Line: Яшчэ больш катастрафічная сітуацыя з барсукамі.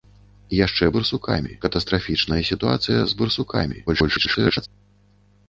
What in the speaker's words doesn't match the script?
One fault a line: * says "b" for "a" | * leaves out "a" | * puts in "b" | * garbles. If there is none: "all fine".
* says "барсукамі" for "больш"
* garbles